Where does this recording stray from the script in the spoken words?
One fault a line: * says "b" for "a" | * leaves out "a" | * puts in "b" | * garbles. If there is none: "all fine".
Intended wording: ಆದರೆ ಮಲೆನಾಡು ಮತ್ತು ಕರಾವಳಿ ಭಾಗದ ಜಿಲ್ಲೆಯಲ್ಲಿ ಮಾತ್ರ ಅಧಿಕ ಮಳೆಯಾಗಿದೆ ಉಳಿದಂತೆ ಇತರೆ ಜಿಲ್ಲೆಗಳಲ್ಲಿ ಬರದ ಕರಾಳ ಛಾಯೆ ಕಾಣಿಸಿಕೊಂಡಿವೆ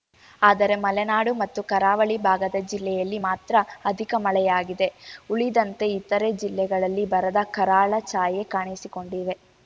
all fine